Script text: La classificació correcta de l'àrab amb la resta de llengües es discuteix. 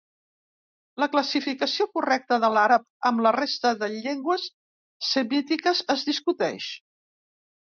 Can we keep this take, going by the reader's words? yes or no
no